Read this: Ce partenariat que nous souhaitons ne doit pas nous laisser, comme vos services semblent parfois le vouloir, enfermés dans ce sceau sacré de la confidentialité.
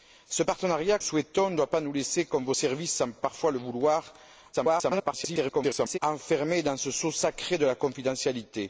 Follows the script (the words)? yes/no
no